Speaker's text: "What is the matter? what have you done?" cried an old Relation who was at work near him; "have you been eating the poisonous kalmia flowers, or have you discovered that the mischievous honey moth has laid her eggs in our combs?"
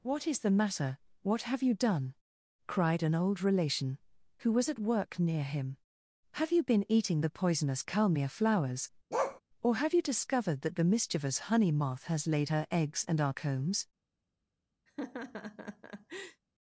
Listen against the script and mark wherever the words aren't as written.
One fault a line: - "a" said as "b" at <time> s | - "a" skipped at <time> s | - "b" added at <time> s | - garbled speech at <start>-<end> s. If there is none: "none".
- "in" said as "and" at 13.1 s